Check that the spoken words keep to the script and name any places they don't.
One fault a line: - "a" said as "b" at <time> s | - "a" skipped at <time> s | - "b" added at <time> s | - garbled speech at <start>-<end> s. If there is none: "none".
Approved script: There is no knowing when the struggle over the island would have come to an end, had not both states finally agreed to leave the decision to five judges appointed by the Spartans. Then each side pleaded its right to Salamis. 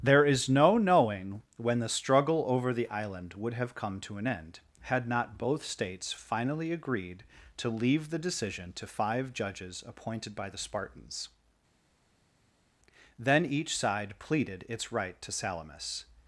none